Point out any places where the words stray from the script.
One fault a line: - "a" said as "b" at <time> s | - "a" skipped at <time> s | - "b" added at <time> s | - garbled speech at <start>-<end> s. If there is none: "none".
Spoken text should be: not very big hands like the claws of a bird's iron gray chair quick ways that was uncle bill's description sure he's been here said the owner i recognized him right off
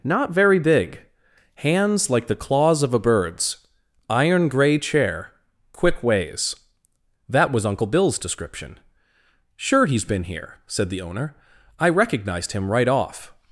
none